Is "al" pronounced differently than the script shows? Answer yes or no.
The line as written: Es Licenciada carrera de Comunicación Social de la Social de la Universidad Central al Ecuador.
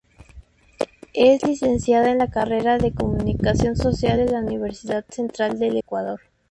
yes